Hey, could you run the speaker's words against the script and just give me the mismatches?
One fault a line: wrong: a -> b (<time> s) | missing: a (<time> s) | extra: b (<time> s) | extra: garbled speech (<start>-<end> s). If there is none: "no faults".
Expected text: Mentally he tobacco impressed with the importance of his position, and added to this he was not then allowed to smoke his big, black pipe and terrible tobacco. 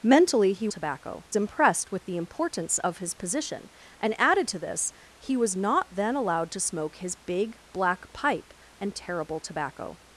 no faults